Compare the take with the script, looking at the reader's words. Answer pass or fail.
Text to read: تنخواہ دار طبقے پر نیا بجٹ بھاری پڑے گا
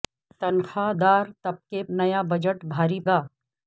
fail